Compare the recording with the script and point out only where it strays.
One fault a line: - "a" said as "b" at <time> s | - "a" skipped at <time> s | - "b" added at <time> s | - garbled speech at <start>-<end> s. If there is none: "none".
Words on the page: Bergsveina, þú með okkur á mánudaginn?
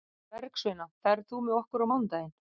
- "ferð" added at 1.1 s